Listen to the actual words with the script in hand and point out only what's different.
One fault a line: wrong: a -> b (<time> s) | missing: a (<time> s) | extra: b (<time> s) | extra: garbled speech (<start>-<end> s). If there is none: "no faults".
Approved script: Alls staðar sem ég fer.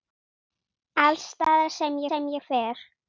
extra: sem (2.1 s)